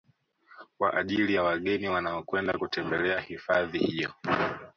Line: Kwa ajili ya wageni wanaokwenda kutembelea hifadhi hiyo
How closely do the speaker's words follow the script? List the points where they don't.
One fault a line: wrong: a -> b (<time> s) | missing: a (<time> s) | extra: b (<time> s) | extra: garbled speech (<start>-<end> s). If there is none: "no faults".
no faults